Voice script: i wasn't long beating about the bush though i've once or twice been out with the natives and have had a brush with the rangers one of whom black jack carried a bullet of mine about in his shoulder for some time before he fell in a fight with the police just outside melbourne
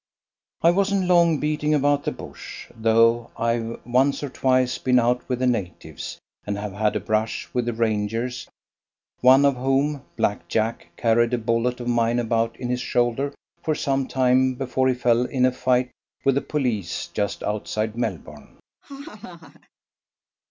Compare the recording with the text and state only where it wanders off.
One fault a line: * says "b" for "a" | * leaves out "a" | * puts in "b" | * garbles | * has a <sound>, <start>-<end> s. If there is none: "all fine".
* has a laugh, 18.8-19.7 s